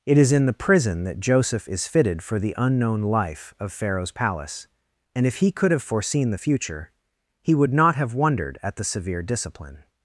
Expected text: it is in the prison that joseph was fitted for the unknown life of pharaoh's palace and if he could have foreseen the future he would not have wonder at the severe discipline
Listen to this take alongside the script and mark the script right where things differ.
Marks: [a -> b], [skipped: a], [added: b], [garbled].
it is in the prison that joseph [was -> is] fitted for the unknown life of pharaoh's palace and if he could have foreseen the future he would not have [wonder -> wondered] at the severe discipline